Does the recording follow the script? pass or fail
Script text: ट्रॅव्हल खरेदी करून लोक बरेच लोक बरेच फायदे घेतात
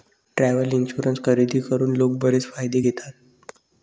fail